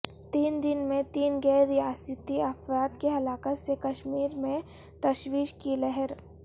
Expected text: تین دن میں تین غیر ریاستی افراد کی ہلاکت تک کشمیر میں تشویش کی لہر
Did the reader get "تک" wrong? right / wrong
wrong